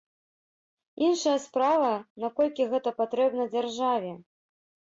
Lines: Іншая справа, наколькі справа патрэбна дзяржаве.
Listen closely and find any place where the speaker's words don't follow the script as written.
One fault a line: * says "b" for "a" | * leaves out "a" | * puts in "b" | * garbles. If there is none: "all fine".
* says "гэта" for "справа"